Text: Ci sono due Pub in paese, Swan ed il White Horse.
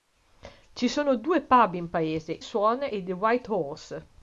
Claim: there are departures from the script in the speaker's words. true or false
false